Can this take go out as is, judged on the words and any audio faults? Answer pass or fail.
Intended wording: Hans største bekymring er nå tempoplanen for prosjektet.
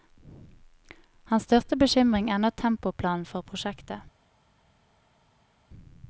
pass